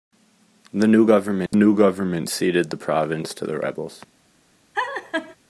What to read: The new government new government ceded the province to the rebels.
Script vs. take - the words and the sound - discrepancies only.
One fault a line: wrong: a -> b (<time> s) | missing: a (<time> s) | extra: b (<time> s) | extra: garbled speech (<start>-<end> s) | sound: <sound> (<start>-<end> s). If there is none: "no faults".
sound: dropout (1.5-1.5 s)
sound: laugh (4.7-5.4 s)